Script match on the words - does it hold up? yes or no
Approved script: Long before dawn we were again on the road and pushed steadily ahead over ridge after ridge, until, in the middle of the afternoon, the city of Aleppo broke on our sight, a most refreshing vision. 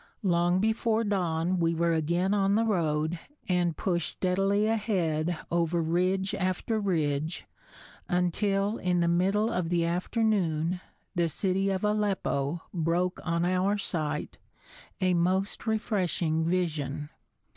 yes